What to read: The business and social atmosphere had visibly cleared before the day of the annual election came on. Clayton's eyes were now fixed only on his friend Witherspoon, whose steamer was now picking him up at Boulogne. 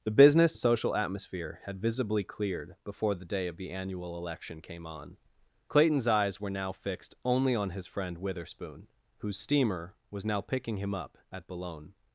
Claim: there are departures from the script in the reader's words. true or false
true